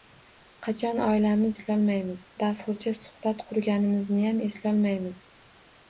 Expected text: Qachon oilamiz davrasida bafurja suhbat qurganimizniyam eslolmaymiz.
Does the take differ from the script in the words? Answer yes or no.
yes